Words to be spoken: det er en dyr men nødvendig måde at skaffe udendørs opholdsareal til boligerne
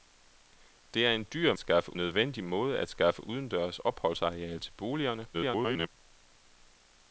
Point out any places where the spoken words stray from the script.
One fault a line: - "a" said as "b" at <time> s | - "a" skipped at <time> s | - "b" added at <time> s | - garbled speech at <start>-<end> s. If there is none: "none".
- "men" said as "skaffe" at 1.6 s
- garbled speech at 5.3-5.9 s